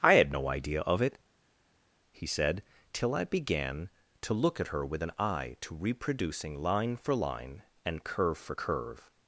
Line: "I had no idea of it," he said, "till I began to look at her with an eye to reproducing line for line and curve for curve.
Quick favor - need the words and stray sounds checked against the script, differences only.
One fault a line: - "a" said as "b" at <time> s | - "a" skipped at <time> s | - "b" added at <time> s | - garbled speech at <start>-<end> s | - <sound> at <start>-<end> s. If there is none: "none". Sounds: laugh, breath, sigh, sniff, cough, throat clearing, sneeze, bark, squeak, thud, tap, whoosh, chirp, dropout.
none